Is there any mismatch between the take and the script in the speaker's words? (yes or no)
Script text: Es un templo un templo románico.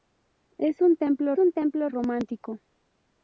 no